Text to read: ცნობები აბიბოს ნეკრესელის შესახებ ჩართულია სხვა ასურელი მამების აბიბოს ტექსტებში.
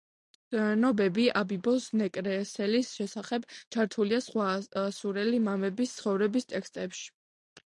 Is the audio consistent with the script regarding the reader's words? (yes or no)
no